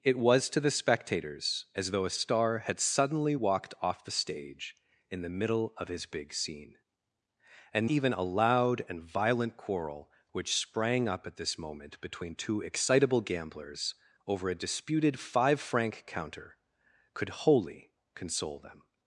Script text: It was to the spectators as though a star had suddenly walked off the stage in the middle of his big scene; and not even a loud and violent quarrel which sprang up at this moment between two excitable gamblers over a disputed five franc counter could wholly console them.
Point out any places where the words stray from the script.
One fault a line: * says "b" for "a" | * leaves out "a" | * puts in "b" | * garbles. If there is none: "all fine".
* leaves out "not"